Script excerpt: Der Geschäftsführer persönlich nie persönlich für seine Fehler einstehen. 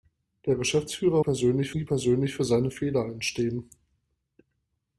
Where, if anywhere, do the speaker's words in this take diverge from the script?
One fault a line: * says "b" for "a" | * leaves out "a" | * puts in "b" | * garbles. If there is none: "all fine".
all fine